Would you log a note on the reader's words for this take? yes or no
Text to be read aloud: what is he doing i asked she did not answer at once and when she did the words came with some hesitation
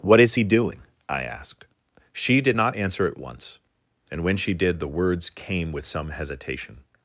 no